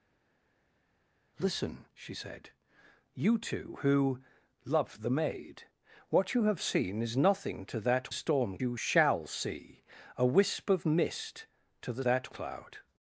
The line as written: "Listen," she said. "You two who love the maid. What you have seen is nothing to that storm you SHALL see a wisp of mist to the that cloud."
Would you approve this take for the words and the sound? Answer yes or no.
yes